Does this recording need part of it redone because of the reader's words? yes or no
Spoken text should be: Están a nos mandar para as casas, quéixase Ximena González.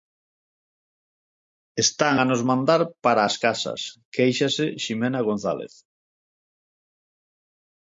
no